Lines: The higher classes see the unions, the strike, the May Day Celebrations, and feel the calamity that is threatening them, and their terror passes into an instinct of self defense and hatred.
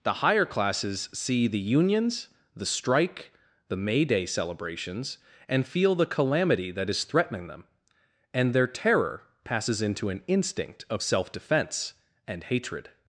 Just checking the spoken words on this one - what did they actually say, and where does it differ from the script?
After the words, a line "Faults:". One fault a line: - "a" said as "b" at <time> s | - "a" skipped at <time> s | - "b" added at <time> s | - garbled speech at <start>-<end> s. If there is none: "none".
The higher classes see the unions, the strike, the May Day Celebrations, and feel the calamity that is threatening them, and their terror passes into an instinct of self defense and hatred.
Faults:
none